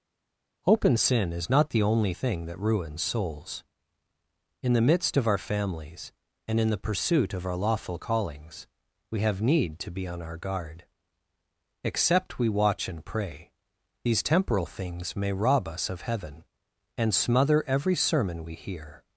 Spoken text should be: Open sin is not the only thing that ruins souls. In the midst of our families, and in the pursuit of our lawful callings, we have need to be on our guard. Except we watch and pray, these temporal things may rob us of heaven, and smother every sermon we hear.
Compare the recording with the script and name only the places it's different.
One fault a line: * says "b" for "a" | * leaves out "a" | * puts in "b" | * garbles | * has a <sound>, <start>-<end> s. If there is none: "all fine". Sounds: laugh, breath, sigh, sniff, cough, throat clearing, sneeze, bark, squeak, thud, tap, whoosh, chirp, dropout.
all fine